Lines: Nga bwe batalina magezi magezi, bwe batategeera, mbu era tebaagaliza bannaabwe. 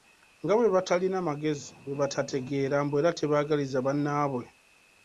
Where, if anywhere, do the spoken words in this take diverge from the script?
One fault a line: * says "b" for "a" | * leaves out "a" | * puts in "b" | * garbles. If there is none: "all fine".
* leaves out "magezi"